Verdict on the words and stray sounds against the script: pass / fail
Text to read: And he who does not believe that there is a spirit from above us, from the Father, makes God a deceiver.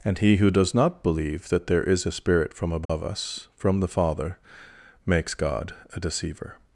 fail